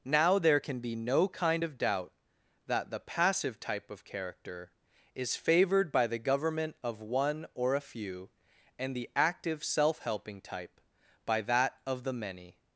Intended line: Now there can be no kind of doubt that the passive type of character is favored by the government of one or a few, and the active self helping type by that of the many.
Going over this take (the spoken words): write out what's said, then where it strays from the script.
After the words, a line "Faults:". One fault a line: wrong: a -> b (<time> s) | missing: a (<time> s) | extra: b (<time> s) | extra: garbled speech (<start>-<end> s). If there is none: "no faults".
Now there can be no kind of doubt that the passive type of character is favored by the government of one or a few, and the active self helping type by that of the many.
Faults:
no faults